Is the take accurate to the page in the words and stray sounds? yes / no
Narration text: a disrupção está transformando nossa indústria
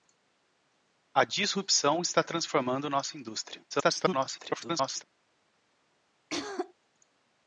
no